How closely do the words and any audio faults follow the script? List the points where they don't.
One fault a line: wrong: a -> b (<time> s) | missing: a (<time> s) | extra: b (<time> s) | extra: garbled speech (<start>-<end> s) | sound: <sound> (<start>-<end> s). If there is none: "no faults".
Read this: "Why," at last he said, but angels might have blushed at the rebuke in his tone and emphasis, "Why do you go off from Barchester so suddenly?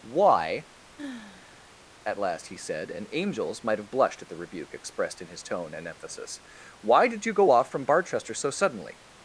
sound: sigh (1.0-1.7 s)
wrong: but -> and (2.9 s)
extra: expressed (4.7 s)
wrong: do -> did (7.1 s)